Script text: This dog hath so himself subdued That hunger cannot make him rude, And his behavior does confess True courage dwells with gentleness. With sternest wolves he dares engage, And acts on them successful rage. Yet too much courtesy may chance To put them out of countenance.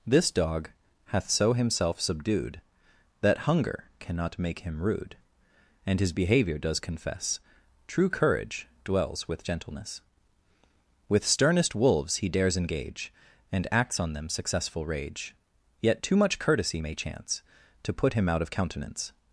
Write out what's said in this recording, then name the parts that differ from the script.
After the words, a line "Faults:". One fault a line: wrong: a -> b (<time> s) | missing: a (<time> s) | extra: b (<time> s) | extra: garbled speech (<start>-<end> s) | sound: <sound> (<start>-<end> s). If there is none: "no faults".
This dog hath so himself subdued That hunger cannot make him rude, And his behavior does confess True courage dwells with gentleness. With sternest wolves he dares engage, And acts on them successful rage. Yet too much courtesy may chance To put him out of countenance.
Faults:
wrong: them -> him (18.1 s)